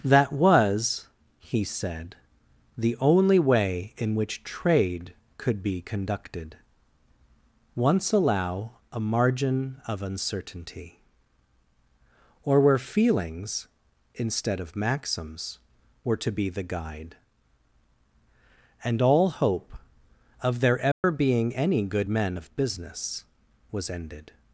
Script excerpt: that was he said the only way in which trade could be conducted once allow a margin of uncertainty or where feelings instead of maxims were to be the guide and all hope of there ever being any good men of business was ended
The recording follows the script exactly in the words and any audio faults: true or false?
false